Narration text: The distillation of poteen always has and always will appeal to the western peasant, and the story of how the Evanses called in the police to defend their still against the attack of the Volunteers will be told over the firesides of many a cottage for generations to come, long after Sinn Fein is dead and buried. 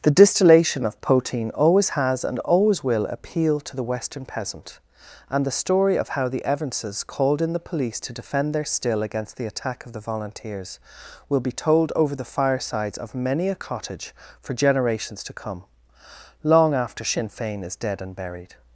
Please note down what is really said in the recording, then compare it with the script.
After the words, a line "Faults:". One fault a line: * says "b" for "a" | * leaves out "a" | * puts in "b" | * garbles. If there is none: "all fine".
The distillation of poteen always has and always will appeal to the western peasant, and the story of how the Evanses called in the police to defend their still against the attack of the Volunteers will be told over the firesides of many a cottage for generations to come, long after Sinn Fein is dead and buried.
Faults:
all fine